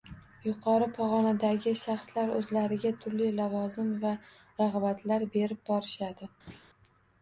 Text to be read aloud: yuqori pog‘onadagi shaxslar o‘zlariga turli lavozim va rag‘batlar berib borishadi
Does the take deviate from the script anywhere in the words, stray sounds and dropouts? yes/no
yes